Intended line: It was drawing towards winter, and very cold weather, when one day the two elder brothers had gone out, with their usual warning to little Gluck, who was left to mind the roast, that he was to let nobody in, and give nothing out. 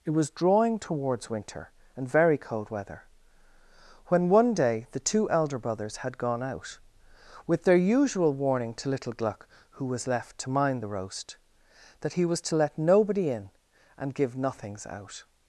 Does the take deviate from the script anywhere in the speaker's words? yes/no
yes